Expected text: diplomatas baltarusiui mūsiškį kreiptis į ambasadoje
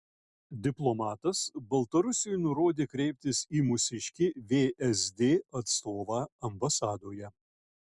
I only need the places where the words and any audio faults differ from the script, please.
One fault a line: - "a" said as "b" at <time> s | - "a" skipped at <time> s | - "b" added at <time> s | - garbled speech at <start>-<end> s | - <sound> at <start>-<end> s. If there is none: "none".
- "mūsiškį" said as "nurodė" at 2.5 s
- "mūsiškį vsd atstovą" added at 3.7 s